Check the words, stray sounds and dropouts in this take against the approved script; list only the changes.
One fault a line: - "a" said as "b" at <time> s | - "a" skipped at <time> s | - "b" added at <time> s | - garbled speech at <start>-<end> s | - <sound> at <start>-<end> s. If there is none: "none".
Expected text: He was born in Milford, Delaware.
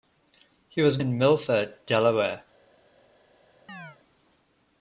- "born" skipped at 1.0 s
- chirp at 3.7-4.0 s